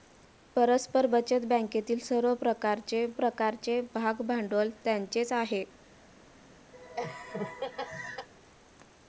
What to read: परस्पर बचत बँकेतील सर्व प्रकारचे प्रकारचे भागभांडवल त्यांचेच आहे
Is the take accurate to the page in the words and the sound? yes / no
no